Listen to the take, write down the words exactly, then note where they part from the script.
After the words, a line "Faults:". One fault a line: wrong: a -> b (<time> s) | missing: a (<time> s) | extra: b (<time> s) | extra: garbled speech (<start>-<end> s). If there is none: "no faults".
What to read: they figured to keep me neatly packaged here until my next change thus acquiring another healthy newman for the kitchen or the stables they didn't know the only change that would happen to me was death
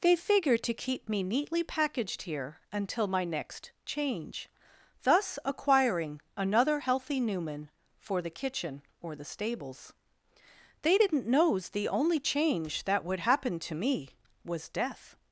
they figured to keep me neatly packaged here until my next change thus acquiring another healthy newman for the kitchen or the stables they didn't knows the only change that would happen to me was death
Faults:
wrong: know -> knows (11.3 s)